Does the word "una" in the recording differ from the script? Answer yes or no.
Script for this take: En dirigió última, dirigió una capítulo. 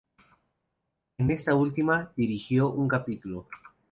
yes